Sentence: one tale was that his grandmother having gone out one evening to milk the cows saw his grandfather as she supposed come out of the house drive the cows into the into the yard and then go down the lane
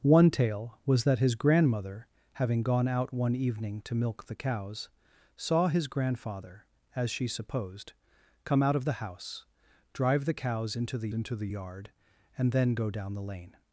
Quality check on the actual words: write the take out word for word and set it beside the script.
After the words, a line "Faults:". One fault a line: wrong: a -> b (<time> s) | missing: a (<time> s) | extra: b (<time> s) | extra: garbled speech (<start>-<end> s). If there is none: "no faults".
one tale was that his grandmother having gone out one evening to milk the cows saw his grandfather as she supposed come out of the house drive the cows into the into the yard and then go down the lane
Faults:
no faults